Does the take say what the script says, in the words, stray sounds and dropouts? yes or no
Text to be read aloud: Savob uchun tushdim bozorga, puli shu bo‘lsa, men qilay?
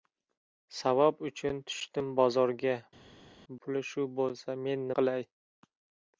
yes